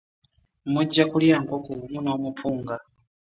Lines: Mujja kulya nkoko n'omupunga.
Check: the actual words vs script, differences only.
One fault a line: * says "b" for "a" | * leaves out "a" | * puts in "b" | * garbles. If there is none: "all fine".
* puts in "wamu"